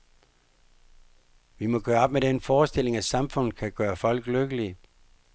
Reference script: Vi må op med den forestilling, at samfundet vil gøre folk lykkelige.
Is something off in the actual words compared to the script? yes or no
yes